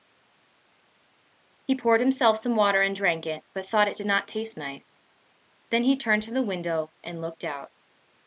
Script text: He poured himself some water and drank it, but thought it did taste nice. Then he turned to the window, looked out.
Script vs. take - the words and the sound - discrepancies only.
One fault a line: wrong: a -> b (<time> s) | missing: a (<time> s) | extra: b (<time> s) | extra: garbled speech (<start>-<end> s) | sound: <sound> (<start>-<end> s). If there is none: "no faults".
extra: not (4.1 s)
extra: and (7.0 s)